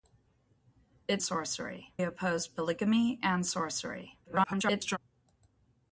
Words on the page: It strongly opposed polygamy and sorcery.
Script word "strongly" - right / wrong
wrong